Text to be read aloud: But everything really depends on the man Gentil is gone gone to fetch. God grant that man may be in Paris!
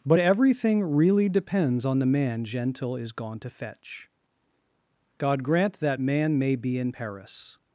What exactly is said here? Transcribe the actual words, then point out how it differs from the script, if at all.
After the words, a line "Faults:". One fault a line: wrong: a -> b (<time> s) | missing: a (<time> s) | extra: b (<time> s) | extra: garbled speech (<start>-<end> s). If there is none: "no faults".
But everything really depends on the man Gentil is gone to fetch. God grant that man may be in Paris!
Faults:
missing: gone (3.4 s)